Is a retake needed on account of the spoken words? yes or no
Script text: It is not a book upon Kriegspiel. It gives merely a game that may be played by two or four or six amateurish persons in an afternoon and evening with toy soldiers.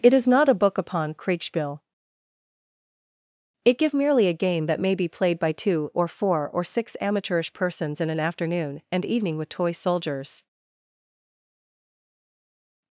yes